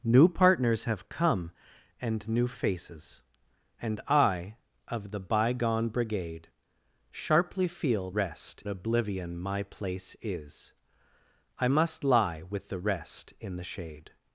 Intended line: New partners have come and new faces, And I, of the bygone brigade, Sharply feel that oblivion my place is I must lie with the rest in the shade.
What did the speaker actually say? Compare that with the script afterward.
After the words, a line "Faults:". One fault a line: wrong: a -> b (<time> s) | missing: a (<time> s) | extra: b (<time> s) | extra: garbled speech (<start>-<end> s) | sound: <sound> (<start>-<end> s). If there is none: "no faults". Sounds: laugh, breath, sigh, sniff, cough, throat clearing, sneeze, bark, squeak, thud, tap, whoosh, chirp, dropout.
New partners have come and new faces, And I, of the bygone brigade, Sharply feel rest oblivion my place is I must lie with the rest in the shade.
Faults:
wrong: that -> rest (8.1 s)